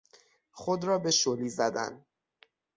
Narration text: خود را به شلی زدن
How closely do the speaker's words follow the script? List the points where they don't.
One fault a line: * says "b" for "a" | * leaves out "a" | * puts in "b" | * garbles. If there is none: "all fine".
all fine